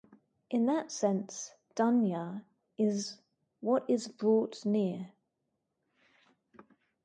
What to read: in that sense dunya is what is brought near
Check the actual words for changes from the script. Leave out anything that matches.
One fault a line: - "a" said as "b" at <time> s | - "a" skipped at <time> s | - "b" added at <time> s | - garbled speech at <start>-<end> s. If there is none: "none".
none